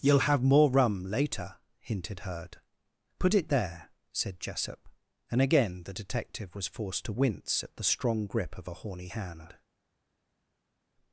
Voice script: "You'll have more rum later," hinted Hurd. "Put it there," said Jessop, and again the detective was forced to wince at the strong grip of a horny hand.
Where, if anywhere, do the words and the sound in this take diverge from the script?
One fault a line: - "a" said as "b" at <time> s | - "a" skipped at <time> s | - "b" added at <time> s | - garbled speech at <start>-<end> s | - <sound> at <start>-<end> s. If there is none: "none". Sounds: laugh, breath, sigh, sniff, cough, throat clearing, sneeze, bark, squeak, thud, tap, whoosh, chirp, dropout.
none